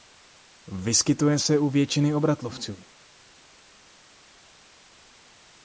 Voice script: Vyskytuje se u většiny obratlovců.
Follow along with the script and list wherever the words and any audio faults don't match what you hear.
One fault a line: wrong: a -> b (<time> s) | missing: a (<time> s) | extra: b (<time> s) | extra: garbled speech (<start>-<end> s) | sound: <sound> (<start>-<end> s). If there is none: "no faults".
no faults